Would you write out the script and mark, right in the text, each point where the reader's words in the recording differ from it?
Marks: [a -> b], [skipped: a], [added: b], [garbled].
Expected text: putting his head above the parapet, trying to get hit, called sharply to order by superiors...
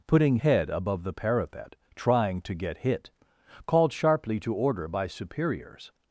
putting [skipped: his] head above the parapet, trying to get hit, called sharply to order by superiors...